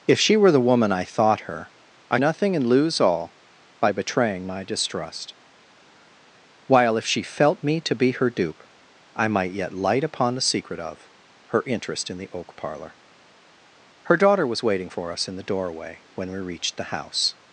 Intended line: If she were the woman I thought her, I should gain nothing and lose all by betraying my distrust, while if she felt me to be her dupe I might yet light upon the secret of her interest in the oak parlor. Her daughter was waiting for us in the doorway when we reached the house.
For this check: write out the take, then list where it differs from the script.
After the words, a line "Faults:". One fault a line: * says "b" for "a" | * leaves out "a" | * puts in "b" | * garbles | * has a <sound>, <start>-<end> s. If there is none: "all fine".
If she were the woman I thought her, I nothing and lose all by betraying my distrust, while if she felt me to be her dupe I might yet light upon the secret of her interest in the oak parlor. Her daughter was waiting for us in the doorway when we reached the house.
Faults:
* leaves out "should gain"